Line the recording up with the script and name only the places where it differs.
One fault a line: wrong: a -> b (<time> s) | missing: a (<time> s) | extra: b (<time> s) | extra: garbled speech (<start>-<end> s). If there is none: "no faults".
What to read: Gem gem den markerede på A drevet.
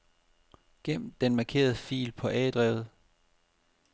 missing: gem (1.1 s)
extra: fil (1.8 s)